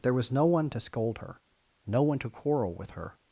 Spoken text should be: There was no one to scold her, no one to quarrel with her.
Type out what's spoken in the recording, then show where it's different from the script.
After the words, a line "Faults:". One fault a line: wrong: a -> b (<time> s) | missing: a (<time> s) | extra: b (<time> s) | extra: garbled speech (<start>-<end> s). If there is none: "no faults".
There was no one to scold her, no one to quarrel with her.
Faults:
no faults